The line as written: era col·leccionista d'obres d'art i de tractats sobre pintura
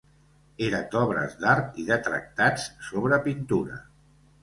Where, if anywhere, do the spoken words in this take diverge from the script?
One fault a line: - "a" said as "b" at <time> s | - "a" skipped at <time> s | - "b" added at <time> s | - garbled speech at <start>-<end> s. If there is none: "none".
- "col·leccionista" skipped at 0.8 s